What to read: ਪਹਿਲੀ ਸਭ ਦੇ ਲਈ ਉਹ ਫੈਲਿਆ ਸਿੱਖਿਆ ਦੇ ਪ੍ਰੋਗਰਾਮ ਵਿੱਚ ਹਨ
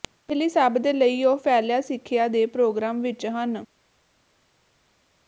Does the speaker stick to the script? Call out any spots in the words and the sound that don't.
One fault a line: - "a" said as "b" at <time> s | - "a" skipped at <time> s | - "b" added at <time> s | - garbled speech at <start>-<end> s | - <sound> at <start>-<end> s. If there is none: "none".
none